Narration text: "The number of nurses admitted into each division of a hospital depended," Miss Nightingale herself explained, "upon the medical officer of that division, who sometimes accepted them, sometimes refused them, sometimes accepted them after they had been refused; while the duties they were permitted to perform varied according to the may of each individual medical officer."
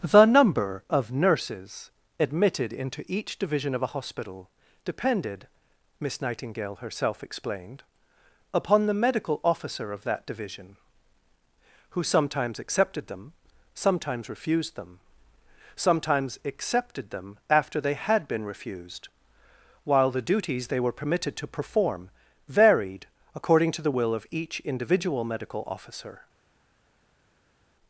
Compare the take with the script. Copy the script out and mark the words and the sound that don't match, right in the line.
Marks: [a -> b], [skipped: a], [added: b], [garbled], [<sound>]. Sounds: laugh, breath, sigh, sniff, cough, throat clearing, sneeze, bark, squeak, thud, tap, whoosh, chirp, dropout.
"The number of nurses admitted into each division of a hospital depended," Miss Nightingale herself explained, "upon the medical officer of that division, who sometimes accepted them, sometimes refused them, sometimes accepted them after they had been refused; while the duties they were permitted to perform varied according to the [may -> will] of each individual medical officer."